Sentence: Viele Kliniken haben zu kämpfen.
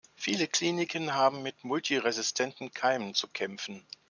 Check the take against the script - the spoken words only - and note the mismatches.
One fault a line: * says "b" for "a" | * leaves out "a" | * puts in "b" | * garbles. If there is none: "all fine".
* puts in "mit multiresistenten Keimen"